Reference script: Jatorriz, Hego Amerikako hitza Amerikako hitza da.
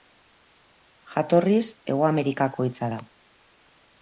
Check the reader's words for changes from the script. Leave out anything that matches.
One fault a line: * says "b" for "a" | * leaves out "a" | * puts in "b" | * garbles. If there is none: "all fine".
* leaves out "Amerikako hitza"